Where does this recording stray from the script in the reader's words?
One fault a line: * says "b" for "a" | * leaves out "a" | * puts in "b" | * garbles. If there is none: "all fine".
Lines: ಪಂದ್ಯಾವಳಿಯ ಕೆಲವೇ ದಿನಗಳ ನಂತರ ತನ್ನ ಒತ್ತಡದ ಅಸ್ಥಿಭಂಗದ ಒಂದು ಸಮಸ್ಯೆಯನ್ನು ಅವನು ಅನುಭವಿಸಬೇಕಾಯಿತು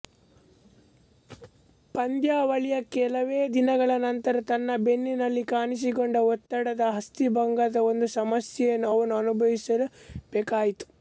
* puts in "ಬೆನ್ನಿನಲ್ಲಿ ಕಾಣಿಸಿಕೊಂಡ"